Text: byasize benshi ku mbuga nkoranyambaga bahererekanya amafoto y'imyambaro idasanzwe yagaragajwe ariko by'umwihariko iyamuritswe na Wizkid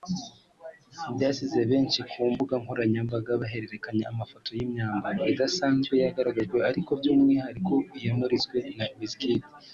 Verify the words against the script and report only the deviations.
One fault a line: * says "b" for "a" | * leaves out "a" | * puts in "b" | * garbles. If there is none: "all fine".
all fine